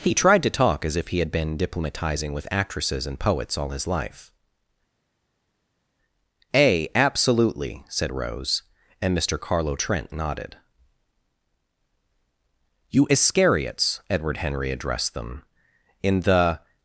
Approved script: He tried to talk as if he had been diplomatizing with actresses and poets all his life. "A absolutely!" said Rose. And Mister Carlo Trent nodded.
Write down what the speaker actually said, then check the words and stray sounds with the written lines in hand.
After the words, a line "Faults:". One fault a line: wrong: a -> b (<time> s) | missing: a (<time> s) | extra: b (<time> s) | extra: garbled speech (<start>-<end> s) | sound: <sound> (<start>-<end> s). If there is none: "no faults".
He tried to talk as if he had been diplomatizing with actresses and poets all his life. "A absolutely!" said Rose. And Mister Carlo Trent nodded. "You Iscariots!" Edward Henry addressed them, in the
Faults:
extra: You Iscariots Edward Henry addressed them in the (12.9 s)